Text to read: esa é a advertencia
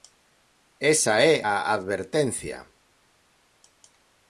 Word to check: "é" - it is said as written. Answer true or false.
true